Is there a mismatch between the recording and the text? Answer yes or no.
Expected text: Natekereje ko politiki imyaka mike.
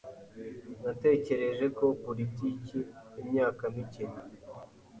no